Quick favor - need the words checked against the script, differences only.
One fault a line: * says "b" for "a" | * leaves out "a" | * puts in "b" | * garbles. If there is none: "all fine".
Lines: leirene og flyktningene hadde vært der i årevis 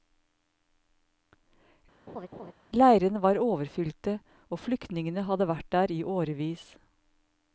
* puts in "var overfylte"